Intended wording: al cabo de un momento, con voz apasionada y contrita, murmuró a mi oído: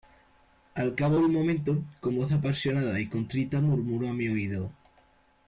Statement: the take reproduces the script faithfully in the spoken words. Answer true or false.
true